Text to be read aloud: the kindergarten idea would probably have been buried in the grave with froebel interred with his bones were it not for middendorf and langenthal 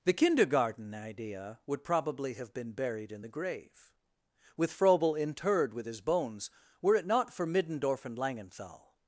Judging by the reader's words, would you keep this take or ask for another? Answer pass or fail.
pass